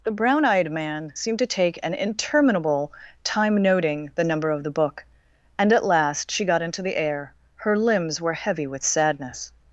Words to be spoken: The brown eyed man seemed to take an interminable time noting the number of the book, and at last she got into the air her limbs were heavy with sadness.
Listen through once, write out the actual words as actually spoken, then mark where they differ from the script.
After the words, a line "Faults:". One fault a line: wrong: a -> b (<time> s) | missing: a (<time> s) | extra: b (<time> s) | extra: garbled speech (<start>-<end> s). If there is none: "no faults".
The brown eyed man seemed to take an interminable time noting the number of the book, and at last she got into the air her limbs were heavy with sadness.
Faults:
no faults